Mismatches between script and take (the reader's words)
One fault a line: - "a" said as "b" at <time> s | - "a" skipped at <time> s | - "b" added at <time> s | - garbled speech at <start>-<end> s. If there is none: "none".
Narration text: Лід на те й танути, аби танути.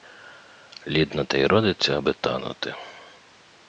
- "танути" said as "родиться" at 1.4 s